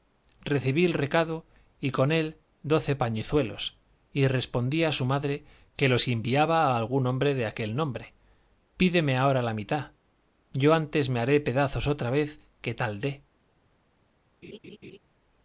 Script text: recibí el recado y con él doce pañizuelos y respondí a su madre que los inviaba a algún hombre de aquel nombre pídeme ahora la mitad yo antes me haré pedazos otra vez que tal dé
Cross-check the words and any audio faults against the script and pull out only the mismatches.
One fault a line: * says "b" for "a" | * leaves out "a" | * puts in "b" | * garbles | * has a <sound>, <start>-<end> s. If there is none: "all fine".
* has a laugh, 14.4-15.0 s